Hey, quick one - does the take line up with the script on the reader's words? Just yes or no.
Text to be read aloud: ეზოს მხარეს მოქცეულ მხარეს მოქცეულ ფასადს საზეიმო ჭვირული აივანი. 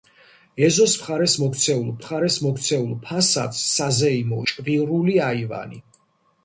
yes